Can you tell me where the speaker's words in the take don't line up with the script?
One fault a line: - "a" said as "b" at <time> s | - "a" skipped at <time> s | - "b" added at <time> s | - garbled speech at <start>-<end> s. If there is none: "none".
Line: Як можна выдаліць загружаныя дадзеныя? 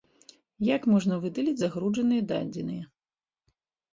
none